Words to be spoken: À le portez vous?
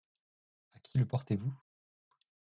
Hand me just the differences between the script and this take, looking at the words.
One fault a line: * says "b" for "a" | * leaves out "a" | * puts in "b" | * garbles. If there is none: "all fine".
* puts in "qui"